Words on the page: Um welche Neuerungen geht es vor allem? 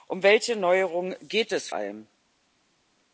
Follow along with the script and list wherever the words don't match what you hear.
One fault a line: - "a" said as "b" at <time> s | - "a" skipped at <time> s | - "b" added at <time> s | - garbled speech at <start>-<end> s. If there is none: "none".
- "vor" skipped at 1.7 s